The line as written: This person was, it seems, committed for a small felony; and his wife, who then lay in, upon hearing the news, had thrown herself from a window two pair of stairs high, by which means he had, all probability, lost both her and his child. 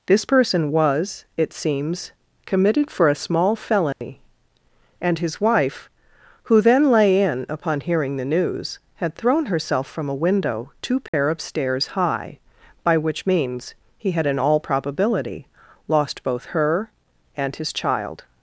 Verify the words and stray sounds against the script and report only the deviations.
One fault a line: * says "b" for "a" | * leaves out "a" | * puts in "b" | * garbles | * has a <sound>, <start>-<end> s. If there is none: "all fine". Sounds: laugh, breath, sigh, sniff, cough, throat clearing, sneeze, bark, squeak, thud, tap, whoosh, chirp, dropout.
* has a dropout, 3.9-4.0 s
* has a dropout, 11.1-11.1 s
* puts in "in"